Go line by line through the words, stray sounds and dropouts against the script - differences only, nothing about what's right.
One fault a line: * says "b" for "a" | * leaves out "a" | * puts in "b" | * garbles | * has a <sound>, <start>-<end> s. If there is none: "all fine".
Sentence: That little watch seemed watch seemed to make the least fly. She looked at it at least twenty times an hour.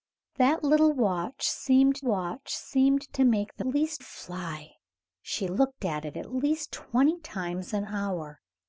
all fine